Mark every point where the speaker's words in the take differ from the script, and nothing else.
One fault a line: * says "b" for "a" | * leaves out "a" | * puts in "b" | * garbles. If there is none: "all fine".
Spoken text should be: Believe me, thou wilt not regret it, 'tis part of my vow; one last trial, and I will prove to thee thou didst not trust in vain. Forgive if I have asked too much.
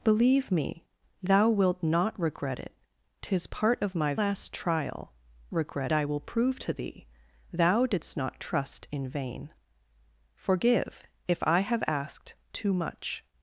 * leaves out "vow one"
* says "regret" for "and"